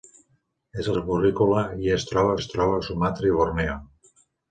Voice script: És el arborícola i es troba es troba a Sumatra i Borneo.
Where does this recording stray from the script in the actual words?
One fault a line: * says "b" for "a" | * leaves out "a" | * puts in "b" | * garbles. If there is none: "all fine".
all fine